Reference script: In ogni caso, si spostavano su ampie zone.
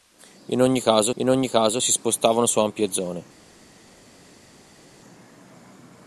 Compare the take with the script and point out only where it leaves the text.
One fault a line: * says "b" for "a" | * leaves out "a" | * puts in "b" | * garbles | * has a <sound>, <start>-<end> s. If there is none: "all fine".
* puts in "in ogni caso"